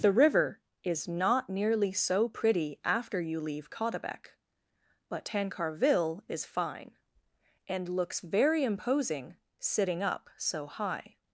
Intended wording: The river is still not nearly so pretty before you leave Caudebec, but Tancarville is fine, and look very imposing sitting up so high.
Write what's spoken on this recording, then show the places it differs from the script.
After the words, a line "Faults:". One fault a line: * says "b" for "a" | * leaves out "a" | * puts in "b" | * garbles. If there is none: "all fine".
The river is not nearly so pretty after you leave Caudebec, but Tancarville is fine, and looks very imposing sitting up so high.
Faults:
* leaves out "still"
* says "after" for "before"
* says "looks" for "look"